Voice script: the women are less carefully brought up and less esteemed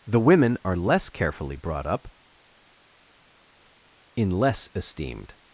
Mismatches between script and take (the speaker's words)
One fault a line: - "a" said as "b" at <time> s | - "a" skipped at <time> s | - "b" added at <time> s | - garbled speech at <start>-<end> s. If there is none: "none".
- "and" said as "in" at 4.2 s